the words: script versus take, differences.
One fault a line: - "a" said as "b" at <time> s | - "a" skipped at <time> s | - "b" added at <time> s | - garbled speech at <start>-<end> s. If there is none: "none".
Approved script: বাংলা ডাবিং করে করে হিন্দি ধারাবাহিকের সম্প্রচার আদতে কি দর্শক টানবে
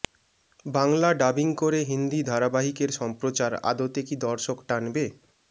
- "করে" skipped at 1.8 s